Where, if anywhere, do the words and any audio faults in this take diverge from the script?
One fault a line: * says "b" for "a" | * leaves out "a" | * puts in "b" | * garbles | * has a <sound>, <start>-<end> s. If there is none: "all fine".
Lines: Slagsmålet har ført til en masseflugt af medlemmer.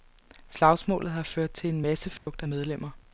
* has a dropout, 2.2-2.3 s